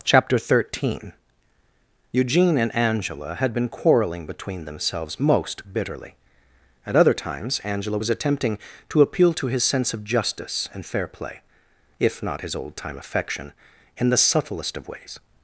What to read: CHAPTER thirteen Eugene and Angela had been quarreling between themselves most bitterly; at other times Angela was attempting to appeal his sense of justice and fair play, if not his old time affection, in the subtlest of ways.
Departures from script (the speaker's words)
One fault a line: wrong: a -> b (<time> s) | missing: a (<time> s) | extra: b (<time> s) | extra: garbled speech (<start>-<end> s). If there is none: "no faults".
extra: to (9.3 s)